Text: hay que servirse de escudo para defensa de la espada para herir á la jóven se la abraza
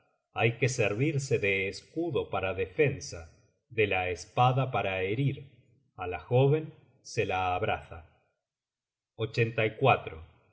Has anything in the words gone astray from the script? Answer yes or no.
no